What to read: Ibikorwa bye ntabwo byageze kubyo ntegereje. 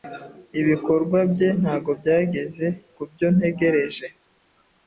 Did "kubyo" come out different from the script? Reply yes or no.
no